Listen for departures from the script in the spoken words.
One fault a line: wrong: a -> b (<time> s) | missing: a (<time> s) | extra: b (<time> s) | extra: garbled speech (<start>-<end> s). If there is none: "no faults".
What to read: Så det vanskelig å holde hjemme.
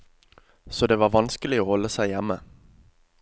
extra: var (1.0 s)
extra: seg (1.9 s)